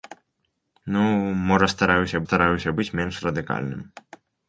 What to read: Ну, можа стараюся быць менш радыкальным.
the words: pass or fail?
fail